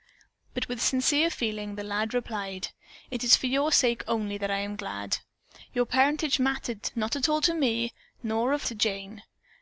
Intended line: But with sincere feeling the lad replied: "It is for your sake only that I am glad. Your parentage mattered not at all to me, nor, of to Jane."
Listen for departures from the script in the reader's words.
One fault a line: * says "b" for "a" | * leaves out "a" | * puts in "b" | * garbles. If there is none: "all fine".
all fine